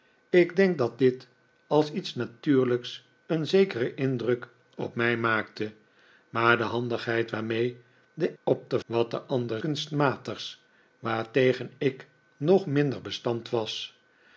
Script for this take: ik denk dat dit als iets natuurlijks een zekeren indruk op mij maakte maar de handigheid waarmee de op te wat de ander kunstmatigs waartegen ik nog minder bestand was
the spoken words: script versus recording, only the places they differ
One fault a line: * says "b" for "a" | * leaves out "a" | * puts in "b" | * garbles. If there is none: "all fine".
all fine